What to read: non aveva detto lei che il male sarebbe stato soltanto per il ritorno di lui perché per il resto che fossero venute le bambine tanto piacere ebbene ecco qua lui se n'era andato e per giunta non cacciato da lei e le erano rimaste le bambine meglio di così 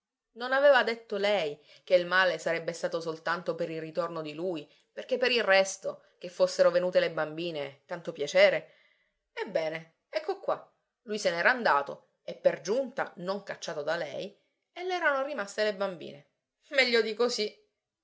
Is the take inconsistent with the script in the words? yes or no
no